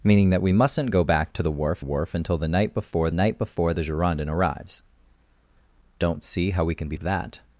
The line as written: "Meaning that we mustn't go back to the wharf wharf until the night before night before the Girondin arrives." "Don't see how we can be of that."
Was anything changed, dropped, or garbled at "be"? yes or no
no